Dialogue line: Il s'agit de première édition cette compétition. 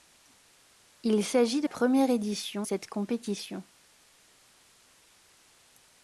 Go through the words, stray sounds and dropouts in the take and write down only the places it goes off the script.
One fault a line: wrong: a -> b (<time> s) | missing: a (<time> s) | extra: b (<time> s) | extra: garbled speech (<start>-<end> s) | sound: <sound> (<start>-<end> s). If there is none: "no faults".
no faults